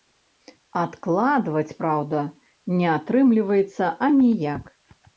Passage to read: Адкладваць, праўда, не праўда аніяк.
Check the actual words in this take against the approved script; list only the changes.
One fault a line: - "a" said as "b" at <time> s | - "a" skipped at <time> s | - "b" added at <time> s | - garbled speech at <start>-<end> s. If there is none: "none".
- "праўда" said as "атрымліваецца" at 3.0 s